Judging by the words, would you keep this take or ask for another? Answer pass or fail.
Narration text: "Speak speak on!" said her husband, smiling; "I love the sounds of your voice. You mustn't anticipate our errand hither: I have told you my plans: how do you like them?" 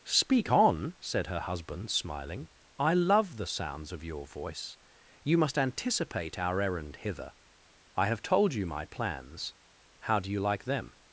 fail